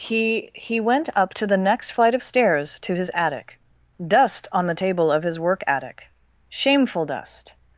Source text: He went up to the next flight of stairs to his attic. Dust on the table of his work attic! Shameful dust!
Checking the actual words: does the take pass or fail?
fail